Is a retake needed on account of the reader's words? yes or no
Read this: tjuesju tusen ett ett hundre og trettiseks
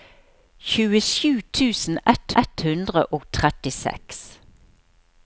no